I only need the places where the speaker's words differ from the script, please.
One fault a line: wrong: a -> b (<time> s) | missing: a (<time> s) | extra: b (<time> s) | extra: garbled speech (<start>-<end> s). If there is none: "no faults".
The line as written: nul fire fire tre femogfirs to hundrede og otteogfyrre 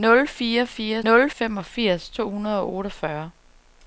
wrong: tre -> nul (1.0 s)